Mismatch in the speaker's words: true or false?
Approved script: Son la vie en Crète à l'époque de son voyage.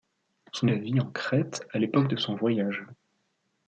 false